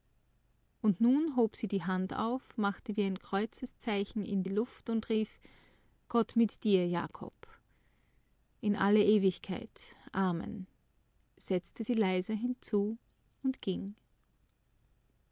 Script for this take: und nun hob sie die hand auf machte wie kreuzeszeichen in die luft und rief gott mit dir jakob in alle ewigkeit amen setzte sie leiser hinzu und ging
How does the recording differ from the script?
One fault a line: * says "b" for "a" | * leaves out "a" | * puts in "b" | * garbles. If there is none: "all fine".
* puts in "ein"